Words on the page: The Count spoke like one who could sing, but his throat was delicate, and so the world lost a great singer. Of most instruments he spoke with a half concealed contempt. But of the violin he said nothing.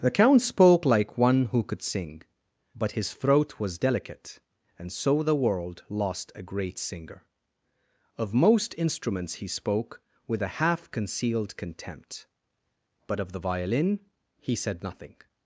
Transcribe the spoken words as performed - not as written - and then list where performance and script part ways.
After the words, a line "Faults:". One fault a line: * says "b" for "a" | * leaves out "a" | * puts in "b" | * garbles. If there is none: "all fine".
The Count spoke like one who could sing, but his throat was delicate, and so the world lost a great singer. Of most instruments he spoke with a half concealed contempt. But of the violin he said nothing.
Faults:
all fine